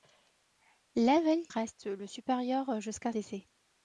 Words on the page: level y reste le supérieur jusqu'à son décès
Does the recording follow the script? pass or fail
fail